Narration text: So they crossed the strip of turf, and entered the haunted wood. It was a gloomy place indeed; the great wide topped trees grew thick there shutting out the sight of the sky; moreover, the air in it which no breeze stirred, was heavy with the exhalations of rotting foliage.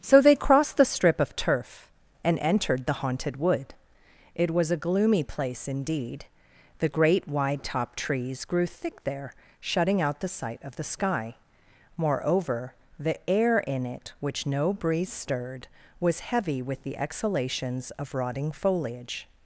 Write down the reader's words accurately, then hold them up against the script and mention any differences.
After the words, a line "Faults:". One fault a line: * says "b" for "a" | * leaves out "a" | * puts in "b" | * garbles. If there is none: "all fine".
So they crossed the strip of turf, and entered the haunted wood. It was a gloomy place indeed; the great wide topped trees grew thick there shutting out the sight of the sky; moreover, the air in it which no breeze stirred, was heavy with the exhalations of rotting foliage.
Faults:
all fine